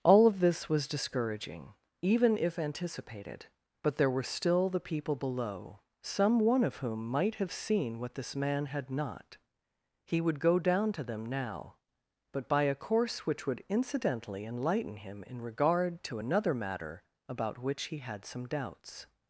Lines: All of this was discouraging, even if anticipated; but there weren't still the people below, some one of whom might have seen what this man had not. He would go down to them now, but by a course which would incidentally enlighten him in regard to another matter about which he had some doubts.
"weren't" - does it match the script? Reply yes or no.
no